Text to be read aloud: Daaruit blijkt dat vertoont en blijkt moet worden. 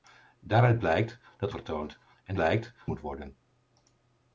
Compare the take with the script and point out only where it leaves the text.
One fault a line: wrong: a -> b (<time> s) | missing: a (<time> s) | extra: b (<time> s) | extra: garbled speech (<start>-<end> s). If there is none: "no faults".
no faults